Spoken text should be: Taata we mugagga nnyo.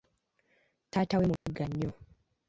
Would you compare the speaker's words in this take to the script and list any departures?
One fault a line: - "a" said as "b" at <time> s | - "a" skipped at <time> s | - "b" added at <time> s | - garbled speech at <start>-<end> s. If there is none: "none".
none